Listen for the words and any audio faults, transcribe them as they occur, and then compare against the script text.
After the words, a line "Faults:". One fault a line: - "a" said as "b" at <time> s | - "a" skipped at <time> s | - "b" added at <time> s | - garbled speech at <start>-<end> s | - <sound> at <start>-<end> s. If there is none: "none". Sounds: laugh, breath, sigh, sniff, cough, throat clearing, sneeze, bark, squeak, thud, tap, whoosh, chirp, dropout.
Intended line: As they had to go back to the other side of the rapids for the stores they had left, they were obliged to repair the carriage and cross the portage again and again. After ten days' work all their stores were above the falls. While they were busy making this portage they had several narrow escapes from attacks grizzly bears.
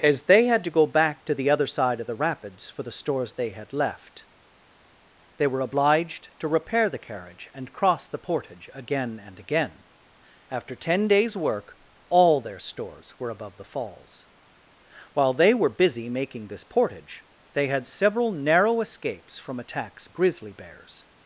As they had to go back to the other side of the rapids for the stores they had left, they were obliged to repair the carriage and cross the portage again and again. After ten days' work all their stores were above the falls. While they were busy making this portage they had several narrow escapes from attacks grizzly bears.
Faults:
none